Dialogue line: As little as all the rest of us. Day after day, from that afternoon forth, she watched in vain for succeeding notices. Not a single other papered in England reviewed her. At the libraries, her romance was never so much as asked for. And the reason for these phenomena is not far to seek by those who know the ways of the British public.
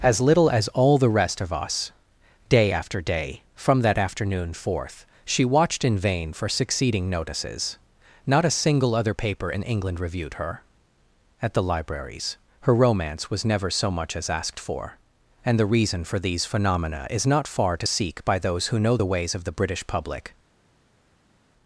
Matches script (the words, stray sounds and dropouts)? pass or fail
fail